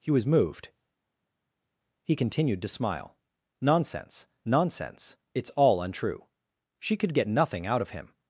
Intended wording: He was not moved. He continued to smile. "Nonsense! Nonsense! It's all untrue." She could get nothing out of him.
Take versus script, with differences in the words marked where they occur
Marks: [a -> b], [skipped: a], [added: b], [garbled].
He was [skipped: not] moved. He continued to smile. "Nonsense! Nonsense! It's all untrue." She could get nothing out of him.